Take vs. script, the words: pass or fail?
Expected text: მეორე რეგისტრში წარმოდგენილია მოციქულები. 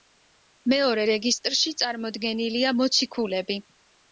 pass